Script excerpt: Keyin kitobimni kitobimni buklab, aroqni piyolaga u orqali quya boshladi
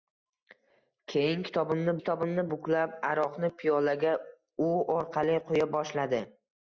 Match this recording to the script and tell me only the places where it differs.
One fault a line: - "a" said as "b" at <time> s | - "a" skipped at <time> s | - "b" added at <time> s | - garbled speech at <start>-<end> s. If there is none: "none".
none